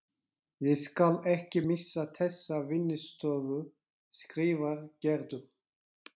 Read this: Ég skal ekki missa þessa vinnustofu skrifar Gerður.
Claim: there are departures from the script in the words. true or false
false